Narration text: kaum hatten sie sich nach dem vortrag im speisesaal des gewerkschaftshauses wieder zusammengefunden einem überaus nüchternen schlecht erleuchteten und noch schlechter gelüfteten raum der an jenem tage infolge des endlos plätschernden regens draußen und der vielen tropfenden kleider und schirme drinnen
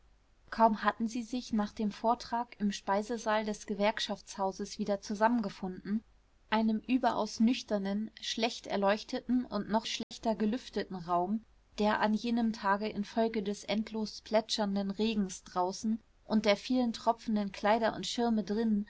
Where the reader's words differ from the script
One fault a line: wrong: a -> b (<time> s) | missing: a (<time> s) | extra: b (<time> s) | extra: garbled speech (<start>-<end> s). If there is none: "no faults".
no faults